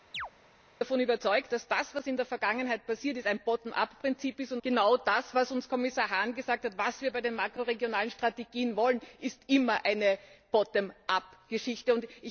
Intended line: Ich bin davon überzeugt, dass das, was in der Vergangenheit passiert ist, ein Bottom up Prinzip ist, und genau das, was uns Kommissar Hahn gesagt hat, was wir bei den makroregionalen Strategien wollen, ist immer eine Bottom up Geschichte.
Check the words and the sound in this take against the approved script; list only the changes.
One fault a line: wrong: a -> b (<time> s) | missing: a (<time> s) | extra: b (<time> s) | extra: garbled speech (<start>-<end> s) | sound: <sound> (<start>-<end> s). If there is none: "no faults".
sound: chirp (0.1-0.3 s)